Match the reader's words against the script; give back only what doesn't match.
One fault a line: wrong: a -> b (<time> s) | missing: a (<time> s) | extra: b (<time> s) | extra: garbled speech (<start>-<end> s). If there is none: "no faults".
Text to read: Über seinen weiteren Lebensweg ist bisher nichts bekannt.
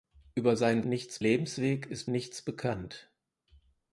wrong: weiteren -> nichts (0.8 s)
missing: bisher (2.1 s)